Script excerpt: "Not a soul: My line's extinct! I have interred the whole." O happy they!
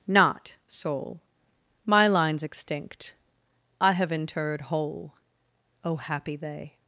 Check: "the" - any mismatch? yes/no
yes